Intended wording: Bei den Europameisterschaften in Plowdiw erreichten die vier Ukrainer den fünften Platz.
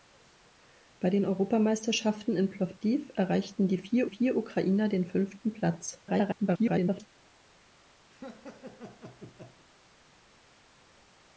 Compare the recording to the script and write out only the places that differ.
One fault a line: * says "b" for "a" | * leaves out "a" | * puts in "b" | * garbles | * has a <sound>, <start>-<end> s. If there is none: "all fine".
* puts in "vier"
* garbles
* has a laugh, 8.1-9.6 s